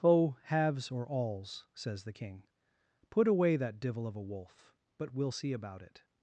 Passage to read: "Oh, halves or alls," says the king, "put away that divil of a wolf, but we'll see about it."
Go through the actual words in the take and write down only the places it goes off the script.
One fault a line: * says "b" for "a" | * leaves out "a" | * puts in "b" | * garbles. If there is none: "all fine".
all fine